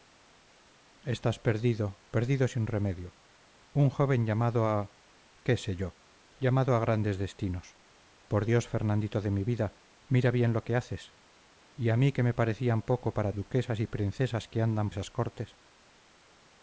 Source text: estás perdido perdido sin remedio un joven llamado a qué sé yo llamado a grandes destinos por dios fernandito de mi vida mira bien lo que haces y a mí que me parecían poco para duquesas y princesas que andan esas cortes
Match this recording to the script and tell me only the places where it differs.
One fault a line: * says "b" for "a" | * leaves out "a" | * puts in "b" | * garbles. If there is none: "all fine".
all fine